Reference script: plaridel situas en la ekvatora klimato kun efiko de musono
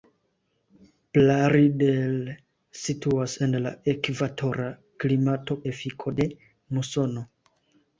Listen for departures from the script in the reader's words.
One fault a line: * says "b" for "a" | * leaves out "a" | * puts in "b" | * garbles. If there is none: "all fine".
* leaves out "kun"